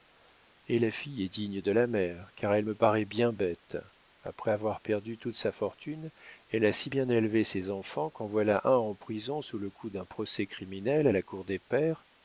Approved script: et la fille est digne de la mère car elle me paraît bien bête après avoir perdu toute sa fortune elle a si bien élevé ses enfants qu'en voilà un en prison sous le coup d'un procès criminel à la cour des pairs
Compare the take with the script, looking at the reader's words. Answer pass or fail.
pass